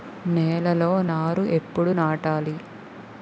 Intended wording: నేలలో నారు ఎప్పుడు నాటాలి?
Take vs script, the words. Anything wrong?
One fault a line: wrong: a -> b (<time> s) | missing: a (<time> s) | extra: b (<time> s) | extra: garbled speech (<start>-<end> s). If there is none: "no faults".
no faults